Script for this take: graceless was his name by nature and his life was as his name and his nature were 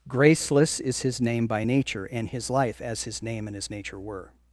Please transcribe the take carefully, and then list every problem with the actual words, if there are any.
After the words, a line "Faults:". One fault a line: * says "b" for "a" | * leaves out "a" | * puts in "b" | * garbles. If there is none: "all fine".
graceless is his name by nature and his life as his name and his nature were
Faults:
* says "is" for "was"
* leaves out "was"